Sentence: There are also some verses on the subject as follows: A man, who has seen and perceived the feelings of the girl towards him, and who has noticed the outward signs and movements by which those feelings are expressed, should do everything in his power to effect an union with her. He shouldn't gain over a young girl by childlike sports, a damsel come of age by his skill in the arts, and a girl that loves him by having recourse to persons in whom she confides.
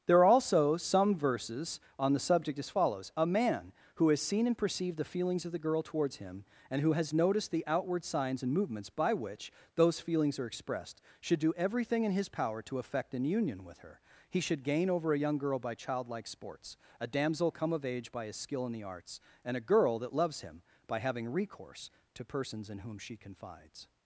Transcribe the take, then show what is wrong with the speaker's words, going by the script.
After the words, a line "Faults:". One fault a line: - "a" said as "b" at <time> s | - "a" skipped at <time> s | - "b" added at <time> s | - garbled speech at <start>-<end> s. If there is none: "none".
There are also some verses on the subject as follows: A man, who has seen and perceived the feelings of the girl towards him, and who has noticed the outward signs and movements by which those feelings are expressed, should do everything in his power to effect an union with her. He should gain over a young girl by childlike sports, a damsel come of age by his skill in the arts, and a girl that loves him by having recourse to persons in whom she confides.
Faults:
- "shouldn't" said as "should" at 14.4 s